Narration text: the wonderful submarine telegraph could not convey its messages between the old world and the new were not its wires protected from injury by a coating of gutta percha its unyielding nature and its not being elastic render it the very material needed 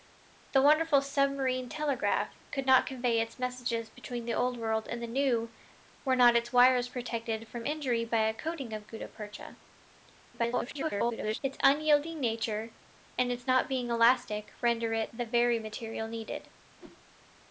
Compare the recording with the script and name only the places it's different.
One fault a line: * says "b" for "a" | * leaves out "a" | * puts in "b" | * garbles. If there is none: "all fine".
* garbles